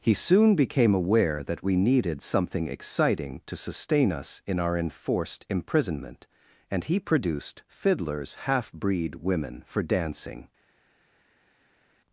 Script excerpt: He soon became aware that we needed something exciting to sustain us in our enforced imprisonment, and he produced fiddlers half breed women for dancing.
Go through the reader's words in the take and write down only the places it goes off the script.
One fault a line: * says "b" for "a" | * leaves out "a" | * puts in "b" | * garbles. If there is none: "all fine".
all fine